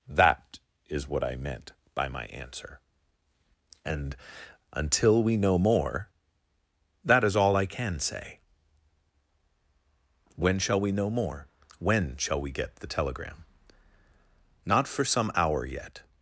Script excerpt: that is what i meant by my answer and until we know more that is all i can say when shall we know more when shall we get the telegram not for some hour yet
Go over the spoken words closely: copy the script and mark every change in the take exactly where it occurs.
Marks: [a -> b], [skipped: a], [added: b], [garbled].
that is what i meant by my answer and until we know more that is all i can say when shall we know more when shall we get the telegram not for some hour yet